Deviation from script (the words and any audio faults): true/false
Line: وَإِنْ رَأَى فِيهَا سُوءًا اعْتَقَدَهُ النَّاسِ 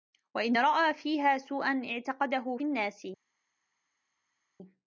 false